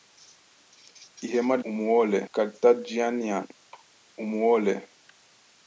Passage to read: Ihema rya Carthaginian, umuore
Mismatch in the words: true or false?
true